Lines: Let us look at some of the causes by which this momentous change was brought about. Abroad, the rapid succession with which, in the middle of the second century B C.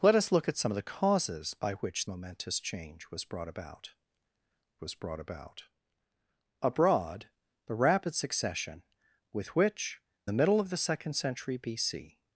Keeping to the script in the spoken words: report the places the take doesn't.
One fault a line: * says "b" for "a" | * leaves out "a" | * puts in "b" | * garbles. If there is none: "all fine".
* leaves out "this"
* puts in "was brought about"
* leaves out "in"